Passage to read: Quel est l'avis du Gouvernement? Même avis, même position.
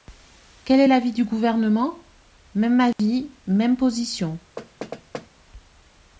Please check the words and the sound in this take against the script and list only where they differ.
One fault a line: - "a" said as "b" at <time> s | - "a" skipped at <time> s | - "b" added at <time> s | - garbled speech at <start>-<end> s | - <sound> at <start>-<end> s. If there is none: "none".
- dropout at 2.9-3.0 s
- thud at 4.6-5.3 s